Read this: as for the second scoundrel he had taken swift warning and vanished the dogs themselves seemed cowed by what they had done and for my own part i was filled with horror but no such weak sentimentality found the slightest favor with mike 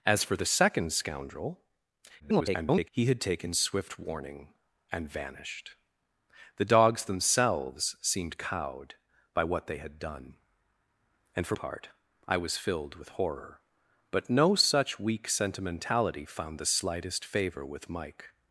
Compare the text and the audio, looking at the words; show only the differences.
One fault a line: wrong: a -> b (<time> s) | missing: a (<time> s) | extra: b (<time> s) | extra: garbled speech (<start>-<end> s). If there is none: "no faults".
extra: garbled speech (2.2-2.9 s)
missing: my own (11.5 s)